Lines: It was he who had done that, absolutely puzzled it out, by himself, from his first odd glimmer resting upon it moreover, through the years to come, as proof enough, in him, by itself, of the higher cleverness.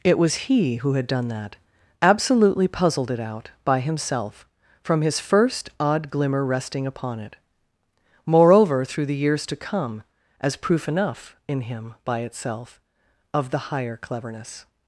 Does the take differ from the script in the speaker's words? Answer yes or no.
no